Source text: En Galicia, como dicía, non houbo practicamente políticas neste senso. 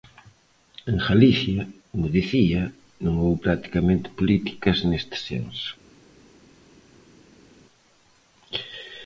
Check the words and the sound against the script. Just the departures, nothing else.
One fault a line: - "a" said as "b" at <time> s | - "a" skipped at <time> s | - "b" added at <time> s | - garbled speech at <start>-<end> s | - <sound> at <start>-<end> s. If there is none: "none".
none